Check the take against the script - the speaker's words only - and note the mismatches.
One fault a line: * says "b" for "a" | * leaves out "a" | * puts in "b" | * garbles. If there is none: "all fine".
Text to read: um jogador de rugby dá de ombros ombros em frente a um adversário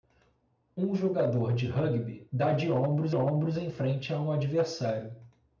all fine